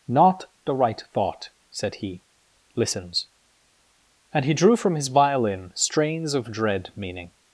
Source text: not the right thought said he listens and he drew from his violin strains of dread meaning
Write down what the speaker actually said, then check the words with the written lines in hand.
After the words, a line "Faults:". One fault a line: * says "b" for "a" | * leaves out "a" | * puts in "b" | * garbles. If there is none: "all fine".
not the right thought said he listens and he drew from his violin strains of dread meaning
Faults:
all fine